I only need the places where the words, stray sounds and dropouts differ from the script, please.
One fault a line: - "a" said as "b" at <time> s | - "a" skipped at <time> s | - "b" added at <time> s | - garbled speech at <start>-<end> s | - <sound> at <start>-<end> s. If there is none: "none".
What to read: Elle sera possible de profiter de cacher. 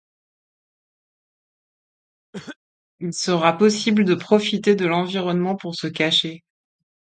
- cough at 2.3-2.6 s
- "Elle" said as "Il" at 3.0 s
- "l'environnement pour se" added at 4.8 s